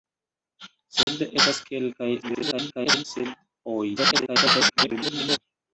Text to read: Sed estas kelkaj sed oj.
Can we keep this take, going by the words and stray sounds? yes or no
no